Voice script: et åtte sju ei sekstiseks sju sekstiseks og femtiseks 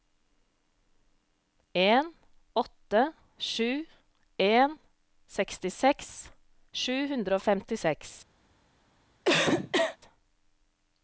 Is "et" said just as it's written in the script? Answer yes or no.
no